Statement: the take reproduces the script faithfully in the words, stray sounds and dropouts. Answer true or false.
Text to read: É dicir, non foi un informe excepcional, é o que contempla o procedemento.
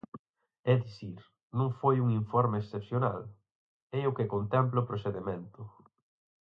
true